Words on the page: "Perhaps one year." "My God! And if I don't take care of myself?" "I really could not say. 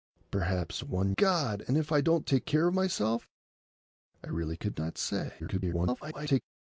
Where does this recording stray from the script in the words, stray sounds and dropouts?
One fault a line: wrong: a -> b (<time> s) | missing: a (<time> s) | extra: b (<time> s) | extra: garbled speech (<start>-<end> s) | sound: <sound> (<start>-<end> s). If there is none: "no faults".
missing: year My (1.1 s)
extra: garbled speech (5.4-6.4 s)